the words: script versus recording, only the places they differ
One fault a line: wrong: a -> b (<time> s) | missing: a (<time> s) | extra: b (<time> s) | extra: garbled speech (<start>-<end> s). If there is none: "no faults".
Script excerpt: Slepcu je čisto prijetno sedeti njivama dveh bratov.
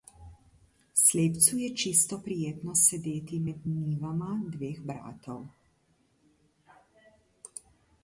extra: med (3.5 s)